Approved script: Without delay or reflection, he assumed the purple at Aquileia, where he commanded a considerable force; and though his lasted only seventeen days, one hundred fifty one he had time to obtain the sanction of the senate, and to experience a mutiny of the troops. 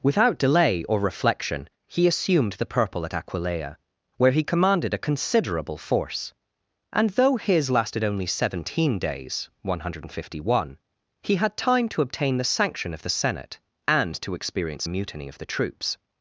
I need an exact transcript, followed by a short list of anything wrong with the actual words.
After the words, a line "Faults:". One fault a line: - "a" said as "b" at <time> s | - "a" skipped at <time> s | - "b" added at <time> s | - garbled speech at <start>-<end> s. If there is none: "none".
Without delay or reflection, he assumed the purple at Aquileia, where he commanded a considerable force; and though his lasted only seventeen days, one hundred fifty one he had time to obtain the sanction of the senate, and to experience a mutiny of the troops.
Faults:
none